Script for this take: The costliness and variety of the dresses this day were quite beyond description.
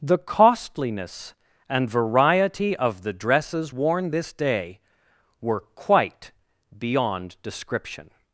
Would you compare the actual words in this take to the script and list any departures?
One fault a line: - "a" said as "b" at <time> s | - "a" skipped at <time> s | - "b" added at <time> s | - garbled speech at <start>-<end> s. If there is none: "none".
- "worn" added at 3.7 s